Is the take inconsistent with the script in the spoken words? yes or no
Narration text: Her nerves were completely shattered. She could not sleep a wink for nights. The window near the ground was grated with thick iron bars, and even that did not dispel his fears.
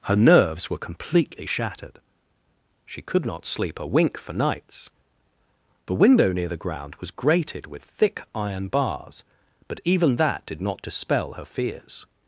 yes